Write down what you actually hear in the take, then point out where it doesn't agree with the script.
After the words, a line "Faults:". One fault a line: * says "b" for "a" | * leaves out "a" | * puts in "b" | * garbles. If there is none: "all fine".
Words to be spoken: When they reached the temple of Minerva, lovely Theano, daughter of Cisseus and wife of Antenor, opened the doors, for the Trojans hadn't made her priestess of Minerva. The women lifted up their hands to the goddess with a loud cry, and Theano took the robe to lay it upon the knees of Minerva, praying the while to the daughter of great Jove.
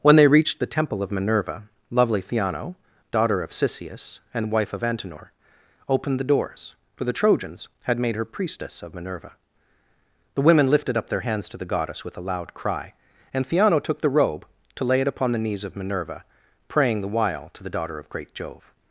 When they reached the temple of Minerva, lovely Theano, daughter of Cisseus and wife of Antenor, opened the doors, for the Trojans had made her priestess of Minerva. The women lifted up their hands to the goddess with a loud cry, and Theano took the robe to lay it upon the knees of Minerva, praying the while to the daughter of great Jove.
Faults:
* says "had" for "hadn't"